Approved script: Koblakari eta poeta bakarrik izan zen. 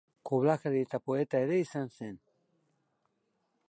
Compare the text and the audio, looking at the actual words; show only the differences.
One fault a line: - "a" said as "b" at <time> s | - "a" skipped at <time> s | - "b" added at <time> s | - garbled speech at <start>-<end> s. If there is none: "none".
- "bakarrik" said as "ere" at 1.5 s